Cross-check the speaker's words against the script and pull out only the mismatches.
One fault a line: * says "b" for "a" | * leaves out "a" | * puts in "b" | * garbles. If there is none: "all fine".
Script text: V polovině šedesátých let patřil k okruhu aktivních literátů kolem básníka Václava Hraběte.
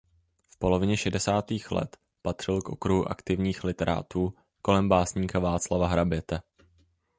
all fine